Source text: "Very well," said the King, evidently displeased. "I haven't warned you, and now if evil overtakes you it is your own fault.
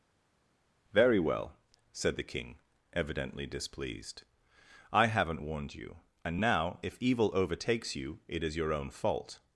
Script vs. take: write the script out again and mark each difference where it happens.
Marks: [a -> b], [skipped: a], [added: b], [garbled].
"Very well," said the King, evidently displeased. "I haven't warned you, and now if evil overtakes you it is your own fault.